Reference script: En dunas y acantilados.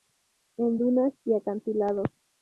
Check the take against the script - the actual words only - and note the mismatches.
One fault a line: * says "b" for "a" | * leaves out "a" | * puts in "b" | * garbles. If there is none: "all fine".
all fine